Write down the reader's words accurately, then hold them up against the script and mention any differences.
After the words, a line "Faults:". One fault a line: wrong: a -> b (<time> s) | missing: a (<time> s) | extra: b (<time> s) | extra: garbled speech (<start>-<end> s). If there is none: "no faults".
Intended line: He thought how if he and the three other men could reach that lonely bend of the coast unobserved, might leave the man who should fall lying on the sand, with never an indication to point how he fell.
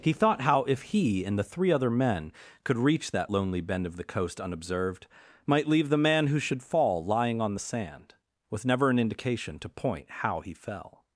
He thought how if he and the three other men could reach that lonely bend of the coast unobserved, might leave the man who should fall lying on the sand, with never an indication to point how he fell.
Faults:
no faults